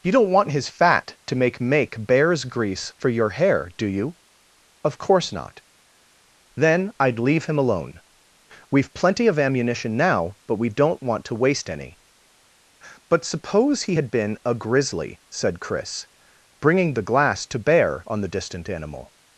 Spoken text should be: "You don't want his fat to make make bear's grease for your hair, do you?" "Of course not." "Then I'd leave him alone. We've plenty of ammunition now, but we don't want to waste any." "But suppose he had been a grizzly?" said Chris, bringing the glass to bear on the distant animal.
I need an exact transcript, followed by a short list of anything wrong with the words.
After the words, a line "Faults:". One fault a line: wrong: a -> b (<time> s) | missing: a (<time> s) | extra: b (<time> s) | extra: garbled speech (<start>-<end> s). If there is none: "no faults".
"You don't want his fat to make make bear's grease for your hair, do you?" "Of course not." "Then I'd leave him alone. We've plenty of ammunition now, but we don't want to waste any." "But suppose he had been a grizzly?" said Chris, bringing the glass to bear on the distant animal.
Faults:
no faults